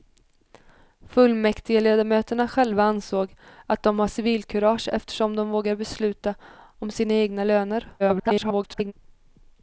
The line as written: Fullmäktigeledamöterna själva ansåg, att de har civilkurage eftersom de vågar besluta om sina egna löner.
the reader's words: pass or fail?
fail